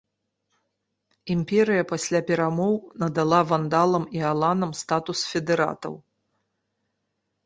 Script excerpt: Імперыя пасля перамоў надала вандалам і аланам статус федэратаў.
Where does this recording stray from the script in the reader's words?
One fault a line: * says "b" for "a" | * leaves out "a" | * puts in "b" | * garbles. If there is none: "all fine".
all fine